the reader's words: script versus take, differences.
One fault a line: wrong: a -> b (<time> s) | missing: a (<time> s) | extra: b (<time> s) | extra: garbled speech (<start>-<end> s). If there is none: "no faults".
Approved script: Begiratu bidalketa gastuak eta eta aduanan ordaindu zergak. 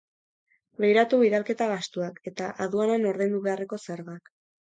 missing: eta (2.5 s)
extra: beharreko (3.5 s)